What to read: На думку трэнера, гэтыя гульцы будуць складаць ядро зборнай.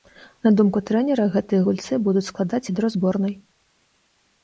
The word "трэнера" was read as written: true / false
true